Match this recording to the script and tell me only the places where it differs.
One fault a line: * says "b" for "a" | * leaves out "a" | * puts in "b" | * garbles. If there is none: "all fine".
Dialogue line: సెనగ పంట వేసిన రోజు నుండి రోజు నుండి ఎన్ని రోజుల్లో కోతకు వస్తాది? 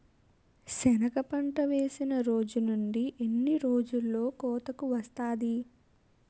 * leaves out "రోజు నుండి"